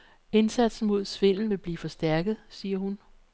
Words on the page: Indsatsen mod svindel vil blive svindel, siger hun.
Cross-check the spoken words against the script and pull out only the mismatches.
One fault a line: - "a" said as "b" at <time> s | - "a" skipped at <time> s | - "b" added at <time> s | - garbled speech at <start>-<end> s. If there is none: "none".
- "svindel" said as "forstærket" at 1.8 s